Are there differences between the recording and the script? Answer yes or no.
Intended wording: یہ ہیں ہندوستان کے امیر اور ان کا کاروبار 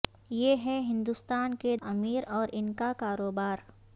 no